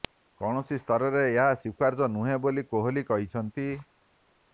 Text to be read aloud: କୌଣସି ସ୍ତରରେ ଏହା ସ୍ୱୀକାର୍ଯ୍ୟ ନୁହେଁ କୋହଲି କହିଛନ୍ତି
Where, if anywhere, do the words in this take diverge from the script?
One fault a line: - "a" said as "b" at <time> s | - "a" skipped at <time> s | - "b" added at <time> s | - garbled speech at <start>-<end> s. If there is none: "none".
- "ବୋଲି" added at 2.5 s